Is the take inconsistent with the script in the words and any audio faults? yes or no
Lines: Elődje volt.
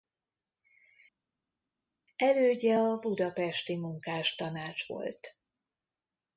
yes